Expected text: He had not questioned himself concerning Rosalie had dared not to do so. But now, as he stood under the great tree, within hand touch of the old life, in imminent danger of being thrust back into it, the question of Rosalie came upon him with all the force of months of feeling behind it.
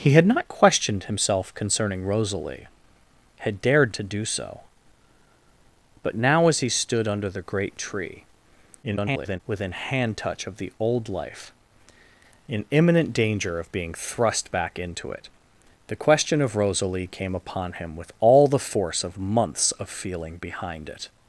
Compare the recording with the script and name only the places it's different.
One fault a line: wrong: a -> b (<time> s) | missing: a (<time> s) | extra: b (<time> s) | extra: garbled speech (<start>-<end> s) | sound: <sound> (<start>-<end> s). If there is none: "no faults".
missing: not (4.0 s)
extra: garbled speech (8.8-9.4 s)